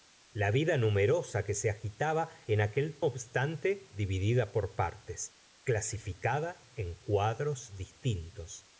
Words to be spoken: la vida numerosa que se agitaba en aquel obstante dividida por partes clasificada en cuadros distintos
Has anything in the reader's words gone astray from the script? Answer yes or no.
no